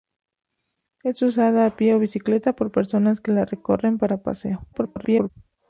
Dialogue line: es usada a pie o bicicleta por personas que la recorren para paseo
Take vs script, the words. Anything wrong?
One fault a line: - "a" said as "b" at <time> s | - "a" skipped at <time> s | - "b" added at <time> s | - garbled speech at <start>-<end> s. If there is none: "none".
- garbled speech at 4.7-5.3 s